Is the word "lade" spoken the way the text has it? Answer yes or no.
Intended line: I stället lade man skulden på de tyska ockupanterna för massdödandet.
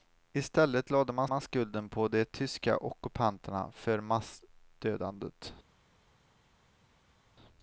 yes